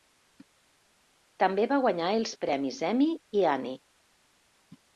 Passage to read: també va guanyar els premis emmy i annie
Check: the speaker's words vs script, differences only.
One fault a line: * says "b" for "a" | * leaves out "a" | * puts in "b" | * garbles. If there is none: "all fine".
all fine